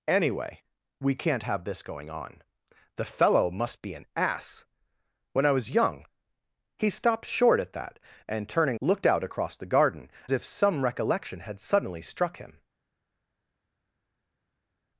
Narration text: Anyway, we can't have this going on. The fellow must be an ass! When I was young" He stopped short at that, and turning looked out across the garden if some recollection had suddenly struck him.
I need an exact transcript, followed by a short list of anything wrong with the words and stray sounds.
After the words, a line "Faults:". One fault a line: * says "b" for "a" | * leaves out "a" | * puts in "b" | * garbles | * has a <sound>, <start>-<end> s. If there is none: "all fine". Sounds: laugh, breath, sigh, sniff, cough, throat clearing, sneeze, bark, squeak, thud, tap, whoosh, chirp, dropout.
Anyway, we can't have this going on. The fellow must be an ass! When I was young" He stopped short at that, and turning looked out across the garden if some recollection had suddenly struck him.
Faults:
all fine